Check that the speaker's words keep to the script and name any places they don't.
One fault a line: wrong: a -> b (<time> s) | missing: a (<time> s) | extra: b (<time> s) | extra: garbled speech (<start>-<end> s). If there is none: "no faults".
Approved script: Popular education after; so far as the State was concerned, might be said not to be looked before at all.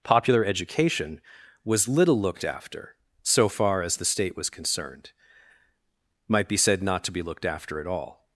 extra: was little looked (1.6 s)
wrong: before -> after (7.5 s)